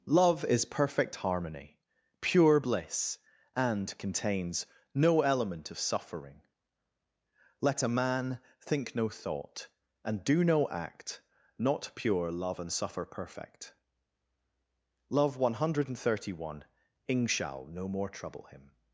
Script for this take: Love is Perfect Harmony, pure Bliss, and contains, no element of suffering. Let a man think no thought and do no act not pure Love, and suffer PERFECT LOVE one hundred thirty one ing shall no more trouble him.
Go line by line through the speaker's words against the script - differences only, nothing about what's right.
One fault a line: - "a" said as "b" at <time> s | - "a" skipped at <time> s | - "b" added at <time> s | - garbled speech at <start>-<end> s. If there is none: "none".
none